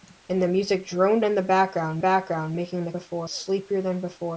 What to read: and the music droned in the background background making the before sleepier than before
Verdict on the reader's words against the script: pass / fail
pass